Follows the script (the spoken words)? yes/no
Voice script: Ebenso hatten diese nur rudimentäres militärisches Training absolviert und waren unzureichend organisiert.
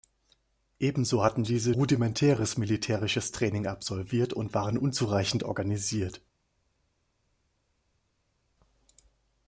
no